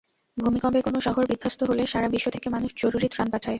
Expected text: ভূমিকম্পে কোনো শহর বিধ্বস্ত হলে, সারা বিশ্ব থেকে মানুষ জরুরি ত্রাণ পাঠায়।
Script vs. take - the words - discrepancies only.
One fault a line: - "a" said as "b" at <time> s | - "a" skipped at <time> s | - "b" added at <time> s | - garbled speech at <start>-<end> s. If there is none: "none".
none